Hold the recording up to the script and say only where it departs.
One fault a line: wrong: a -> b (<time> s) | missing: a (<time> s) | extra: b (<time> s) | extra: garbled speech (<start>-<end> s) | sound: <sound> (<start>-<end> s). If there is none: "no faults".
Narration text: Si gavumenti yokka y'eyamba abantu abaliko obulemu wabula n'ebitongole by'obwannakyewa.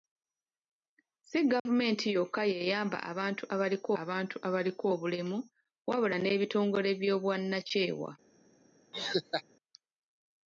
sound: dropout (1.6-1.7 s)
extra: abantu abaliko (4.0 s)
sound: laugh (8.9-9.4 s)